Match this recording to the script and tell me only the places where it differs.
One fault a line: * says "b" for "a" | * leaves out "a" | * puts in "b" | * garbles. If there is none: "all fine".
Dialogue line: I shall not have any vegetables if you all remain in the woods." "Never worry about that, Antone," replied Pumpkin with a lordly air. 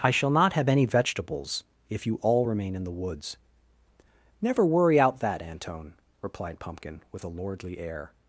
* says "out" for "about"